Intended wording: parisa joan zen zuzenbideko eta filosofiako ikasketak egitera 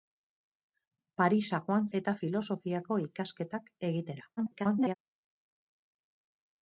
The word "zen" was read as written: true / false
false